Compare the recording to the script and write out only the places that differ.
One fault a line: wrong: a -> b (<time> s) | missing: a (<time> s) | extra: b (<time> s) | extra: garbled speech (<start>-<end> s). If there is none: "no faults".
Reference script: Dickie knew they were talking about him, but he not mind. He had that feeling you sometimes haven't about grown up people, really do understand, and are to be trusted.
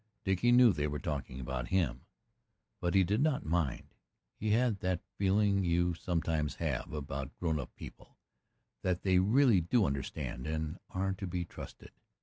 extra: did (3.0 s)
wrong: haven't -> have (6.5 s)
extra: that they (8.8 s)